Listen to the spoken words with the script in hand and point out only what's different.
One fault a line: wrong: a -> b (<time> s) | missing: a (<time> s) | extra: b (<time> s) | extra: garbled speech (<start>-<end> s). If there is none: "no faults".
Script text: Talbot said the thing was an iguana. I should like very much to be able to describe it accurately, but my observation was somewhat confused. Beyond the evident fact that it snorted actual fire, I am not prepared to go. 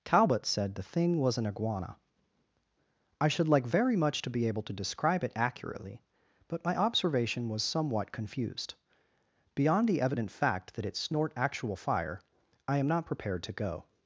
wrong: snorted -> snort (10.9 s)